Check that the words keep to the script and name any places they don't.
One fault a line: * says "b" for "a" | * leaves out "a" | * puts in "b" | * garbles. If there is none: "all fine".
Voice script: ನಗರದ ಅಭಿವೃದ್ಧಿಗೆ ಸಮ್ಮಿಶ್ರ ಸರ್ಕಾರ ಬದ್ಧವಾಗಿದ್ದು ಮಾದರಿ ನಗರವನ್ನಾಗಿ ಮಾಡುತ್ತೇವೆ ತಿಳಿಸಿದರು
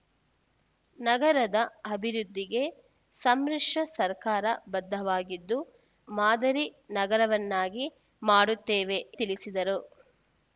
all fine